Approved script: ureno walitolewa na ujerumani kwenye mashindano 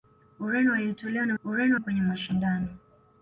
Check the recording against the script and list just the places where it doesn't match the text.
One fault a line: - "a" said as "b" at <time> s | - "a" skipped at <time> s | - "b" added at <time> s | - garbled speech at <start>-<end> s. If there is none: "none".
- "ujerumani" said as "ureno" at 1.4 s